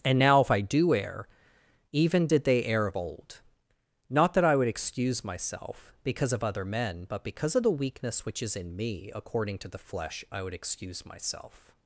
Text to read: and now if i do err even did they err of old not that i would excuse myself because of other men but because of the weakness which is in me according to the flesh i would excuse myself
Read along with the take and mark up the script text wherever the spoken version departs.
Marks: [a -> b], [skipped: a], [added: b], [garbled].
and now if i do err even did they err of old not that i would excuse myself because of other men but because of the weakness which is in me according to the flesh i would excuse myself